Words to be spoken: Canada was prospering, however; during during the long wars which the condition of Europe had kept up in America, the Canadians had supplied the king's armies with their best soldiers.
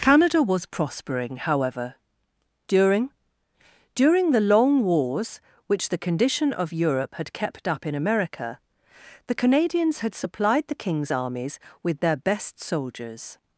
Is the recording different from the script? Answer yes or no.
no